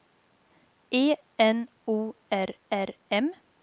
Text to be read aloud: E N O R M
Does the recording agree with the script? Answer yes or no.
no